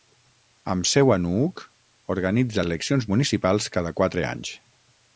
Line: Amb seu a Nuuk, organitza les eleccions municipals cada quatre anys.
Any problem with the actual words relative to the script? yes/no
yes